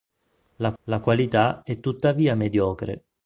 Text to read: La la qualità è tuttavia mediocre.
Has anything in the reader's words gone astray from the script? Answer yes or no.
no